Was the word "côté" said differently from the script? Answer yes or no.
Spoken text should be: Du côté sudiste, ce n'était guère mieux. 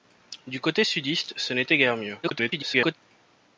no